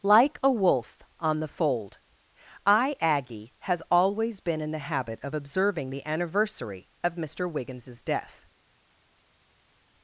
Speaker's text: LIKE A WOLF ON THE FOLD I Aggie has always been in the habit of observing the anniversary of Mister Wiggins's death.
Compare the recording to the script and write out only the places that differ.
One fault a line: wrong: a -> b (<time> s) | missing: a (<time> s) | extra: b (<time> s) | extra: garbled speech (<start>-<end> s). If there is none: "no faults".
no faults